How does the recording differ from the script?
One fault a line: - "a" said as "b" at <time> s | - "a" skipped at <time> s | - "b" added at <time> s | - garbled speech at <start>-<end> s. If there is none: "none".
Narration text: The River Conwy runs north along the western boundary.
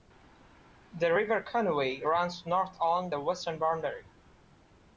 none